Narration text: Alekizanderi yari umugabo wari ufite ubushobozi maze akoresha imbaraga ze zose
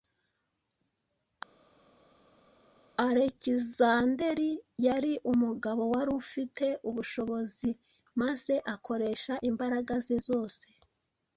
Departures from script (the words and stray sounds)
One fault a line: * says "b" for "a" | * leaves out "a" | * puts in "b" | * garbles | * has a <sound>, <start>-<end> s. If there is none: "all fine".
all fine